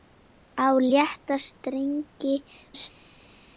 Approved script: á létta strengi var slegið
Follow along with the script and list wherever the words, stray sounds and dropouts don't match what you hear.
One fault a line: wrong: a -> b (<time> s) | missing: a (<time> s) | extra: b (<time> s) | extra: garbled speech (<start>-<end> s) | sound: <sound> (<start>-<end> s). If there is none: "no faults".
missing: var (2.4 s)